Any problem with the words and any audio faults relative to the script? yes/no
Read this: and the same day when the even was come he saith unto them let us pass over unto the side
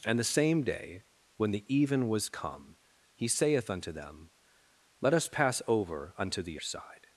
no